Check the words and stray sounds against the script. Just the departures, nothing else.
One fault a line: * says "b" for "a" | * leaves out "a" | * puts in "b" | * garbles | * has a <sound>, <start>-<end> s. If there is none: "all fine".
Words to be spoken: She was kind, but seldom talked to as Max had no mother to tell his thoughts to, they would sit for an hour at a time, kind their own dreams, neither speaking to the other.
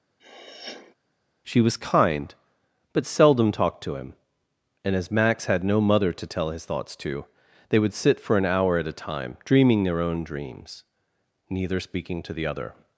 * has a sniff, 0.2-0.9 s
* puts in "him and"
* says "dreaming" for "kind"